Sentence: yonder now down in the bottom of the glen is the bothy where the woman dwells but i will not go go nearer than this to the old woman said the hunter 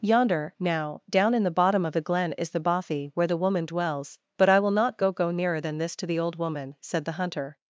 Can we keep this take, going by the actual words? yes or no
yes